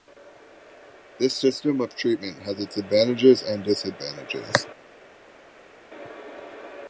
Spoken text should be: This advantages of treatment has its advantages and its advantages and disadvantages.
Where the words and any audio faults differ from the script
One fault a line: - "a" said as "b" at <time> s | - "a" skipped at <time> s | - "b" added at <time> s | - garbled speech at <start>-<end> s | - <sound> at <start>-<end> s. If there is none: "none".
- "advantages" said as "system" at 1.4 s
- "its advantages and" skipped at 3.6 s